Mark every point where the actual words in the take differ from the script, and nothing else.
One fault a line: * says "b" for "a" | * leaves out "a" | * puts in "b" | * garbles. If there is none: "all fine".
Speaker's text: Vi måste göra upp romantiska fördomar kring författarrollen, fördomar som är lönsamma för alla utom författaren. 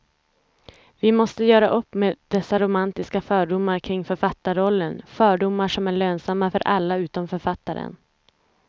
* puts in "med dessa"